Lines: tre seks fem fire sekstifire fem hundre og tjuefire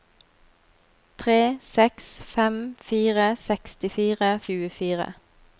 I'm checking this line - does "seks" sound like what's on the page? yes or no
yes